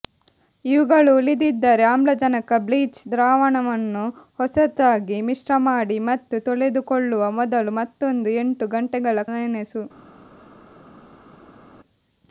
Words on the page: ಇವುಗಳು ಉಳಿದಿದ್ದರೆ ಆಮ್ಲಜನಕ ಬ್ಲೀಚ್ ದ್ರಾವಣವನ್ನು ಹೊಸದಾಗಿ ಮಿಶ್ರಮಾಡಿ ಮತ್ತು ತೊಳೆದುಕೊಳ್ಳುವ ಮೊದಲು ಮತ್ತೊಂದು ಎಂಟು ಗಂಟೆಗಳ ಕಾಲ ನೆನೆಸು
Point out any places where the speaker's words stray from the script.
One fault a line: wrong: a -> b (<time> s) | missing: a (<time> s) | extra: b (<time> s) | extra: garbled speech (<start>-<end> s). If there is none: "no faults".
missing: ಕಾಲ (9.2 s)